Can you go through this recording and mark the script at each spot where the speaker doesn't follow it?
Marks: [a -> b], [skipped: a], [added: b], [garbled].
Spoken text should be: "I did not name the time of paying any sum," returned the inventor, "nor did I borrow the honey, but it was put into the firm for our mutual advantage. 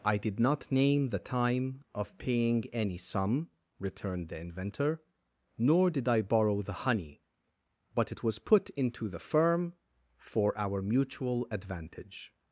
"I did not name the time of paying any sum," returned the inventor, "nor did I borrow the honey, but it was put into the firm for our mutual advantage.